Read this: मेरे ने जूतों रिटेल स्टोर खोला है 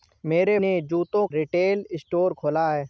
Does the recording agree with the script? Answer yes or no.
yes